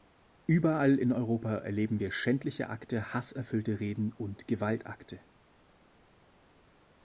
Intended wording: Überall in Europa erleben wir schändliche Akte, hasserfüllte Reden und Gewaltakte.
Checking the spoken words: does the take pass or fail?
pass